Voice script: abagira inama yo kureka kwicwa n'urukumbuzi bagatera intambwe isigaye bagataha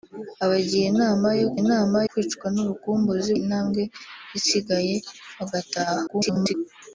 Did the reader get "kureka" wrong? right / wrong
wrong